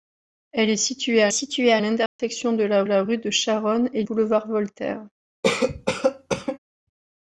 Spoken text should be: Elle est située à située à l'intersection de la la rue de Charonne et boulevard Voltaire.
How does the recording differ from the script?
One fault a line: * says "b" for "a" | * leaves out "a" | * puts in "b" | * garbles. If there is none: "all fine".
all fine